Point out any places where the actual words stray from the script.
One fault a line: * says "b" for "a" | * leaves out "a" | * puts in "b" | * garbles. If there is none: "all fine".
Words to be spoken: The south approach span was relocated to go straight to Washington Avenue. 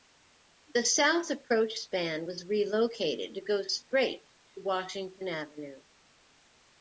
all fine